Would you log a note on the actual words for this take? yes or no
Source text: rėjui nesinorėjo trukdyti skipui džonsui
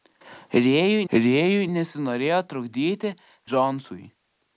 yes